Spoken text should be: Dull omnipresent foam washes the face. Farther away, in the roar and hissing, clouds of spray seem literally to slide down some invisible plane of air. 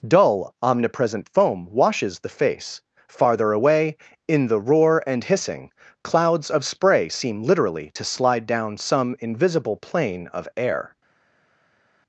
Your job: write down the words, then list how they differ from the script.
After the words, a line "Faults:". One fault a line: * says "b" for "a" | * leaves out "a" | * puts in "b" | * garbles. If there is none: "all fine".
Dull omnipresent foam washes the face. Farther away, in the roar and hissing, clouds of spray seem literally to slide down some invisible plane of air.
Faults:
all fine